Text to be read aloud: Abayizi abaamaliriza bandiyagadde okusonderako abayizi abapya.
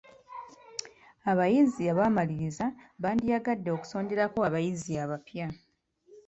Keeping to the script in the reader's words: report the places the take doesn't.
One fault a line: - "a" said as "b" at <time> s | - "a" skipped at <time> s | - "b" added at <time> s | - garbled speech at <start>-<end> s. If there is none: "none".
none